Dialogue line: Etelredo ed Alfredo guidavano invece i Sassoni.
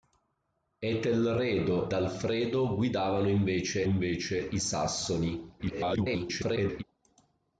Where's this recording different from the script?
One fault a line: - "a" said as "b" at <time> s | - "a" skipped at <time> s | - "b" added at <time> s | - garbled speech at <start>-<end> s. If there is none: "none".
- "ed" skipped at 1.9 s
- "invece" added at 3.8 s
- garbled speech at 5.6-6.8 s